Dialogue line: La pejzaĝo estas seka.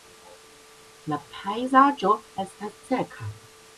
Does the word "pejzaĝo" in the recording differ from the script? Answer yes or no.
no